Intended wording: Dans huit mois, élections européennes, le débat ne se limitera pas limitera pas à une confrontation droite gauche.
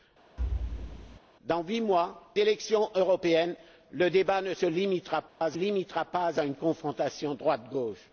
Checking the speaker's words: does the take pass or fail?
pass